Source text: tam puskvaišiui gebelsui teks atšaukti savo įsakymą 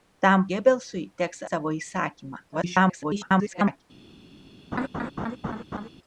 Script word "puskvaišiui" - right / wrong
wrong